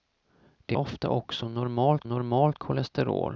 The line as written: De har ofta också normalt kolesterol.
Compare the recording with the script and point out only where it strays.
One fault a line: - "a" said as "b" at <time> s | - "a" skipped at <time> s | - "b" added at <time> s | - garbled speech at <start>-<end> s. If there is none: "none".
- "har" skipped at 0.8 s
- "normalt" added at 2.0 s